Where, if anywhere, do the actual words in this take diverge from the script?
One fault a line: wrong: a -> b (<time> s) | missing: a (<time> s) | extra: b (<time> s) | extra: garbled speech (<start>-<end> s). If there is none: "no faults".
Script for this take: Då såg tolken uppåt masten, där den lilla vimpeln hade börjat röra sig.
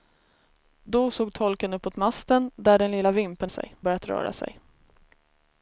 wrong: hade -> sig (3.5 s)